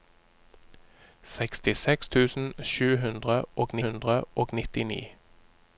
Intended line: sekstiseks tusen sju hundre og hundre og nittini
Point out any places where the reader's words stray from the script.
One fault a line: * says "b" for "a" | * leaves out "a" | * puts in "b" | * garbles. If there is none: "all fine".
all fine